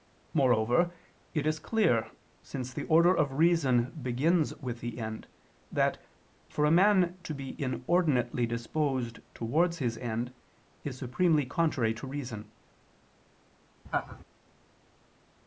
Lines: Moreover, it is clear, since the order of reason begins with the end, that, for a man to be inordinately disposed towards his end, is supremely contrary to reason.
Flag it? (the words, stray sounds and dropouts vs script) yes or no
yes